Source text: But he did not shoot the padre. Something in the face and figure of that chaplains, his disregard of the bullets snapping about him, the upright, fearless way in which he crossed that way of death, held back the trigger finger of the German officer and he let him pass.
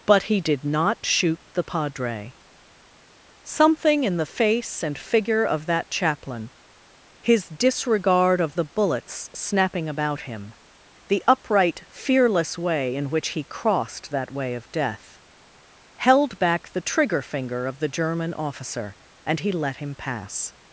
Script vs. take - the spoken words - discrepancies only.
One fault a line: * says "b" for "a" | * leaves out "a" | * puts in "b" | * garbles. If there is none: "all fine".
* says "chaplain" for "chaplains"